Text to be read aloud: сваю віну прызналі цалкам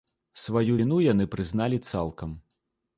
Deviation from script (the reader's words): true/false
true